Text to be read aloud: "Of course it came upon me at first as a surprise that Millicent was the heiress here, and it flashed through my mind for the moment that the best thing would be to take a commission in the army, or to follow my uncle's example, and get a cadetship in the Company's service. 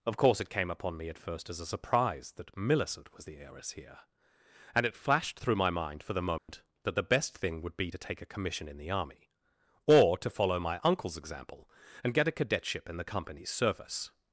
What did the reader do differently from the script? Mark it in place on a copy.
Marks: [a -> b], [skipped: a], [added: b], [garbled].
"Of course it came upon me at first as a surprise that Millicent was the heiress here, and it flashed through my mind for the moment that the best thing would be to take a commission in the army, or to follow my uncle's example, and get a cadetship in the Company's service.